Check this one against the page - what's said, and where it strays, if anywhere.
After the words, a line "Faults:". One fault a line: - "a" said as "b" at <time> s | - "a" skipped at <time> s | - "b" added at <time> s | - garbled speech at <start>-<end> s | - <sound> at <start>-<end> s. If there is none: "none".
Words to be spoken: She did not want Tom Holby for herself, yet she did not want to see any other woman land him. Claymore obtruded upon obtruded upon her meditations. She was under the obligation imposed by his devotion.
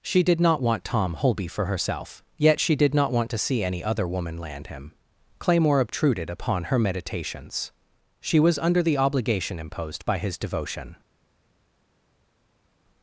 She did not want Tom Holby for herself, yet she did not want to see any other woman land him. Claymore obtruded upon her meditations. She was under the obligation imposed by his devotion.
Faults:
- "obtruded upon" skipped at 6.7 s